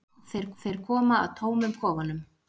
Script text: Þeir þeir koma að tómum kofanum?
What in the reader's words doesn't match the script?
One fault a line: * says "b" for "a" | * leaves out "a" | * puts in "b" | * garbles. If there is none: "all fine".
all fine